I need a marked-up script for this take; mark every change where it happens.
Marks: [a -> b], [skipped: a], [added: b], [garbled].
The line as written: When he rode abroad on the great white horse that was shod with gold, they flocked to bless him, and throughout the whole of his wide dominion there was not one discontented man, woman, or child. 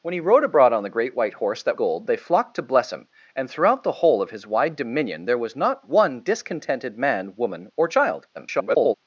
When he rode abroad on the great white horse that [skipped: was shod with] gold, they flocked to bless him, and throughout the whole of his wide dominion there was not one discontented man, woman, or child. [garbled]